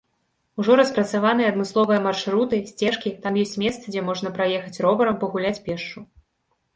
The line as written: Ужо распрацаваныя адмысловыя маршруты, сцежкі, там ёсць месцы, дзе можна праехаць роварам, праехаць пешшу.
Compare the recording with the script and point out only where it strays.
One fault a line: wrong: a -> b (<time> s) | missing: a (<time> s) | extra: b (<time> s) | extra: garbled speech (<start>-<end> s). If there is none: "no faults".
wrong: праехаць -> пагуляць (5.2 s)